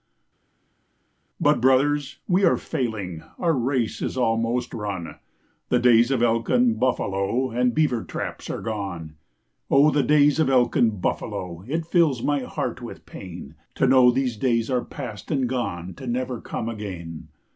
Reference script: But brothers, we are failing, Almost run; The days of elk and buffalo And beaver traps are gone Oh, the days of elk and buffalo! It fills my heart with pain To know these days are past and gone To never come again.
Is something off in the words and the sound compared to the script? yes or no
yes